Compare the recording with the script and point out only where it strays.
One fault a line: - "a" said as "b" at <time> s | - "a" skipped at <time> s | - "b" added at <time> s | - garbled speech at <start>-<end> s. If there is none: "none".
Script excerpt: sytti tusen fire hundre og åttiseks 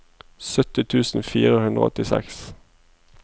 none